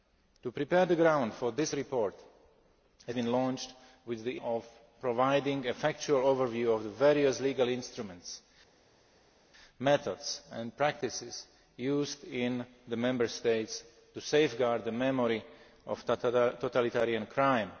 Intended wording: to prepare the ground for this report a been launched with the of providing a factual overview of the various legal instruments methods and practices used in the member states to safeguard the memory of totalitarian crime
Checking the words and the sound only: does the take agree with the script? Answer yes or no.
yes